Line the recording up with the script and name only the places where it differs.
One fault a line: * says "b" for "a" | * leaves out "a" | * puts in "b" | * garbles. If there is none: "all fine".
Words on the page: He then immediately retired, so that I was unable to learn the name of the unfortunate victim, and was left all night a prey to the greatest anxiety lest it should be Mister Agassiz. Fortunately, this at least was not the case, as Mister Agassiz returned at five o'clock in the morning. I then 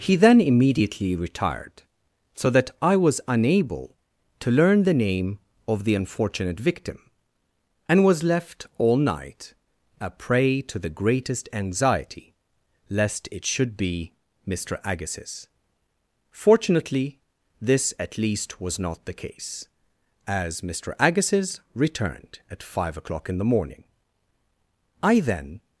all fine